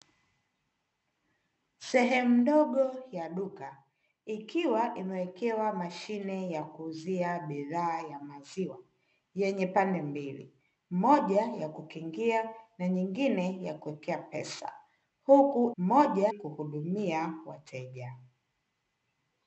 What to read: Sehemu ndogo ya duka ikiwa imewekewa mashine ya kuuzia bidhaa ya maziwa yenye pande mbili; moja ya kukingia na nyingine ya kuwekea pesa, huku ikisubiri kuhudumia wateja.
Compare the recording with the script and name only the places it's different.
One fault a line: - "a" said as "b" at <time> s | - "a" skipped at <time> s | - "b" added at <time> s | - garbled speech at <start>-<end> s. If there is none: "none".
- "ikisubiri" said as "moja" at 15.8 s